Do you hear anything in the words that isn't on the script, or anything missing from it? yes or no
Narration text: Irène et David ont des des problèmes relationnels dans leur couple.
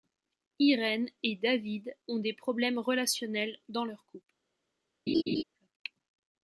yes